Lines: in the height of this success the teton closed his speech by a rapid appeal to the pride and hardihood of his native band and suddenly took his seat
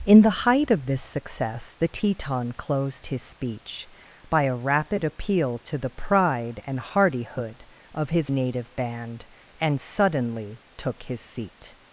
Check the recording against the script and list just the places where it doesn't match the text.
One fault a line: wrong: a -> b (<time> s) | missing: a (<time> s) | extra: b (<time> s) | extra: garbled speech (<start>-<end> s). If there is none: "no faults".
no faults